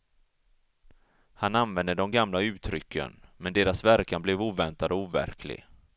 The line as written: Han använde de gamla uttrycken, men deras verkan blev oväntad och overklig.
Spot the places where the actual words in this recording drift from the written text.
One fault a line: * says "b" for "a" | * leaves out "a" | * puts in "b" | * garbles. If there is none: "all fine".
all fine